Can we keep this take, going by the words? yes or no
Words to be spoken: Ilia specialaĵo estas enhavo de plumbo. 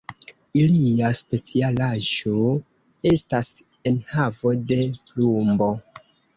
yes